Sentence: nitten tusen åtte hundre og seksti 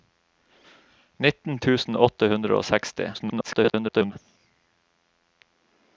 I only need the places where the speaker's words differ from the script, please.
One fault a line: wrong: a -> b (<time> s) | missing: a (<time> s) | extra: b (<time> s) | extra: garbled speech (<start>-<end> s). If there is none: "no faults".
extra: garbled speech (3.1-4.1 s)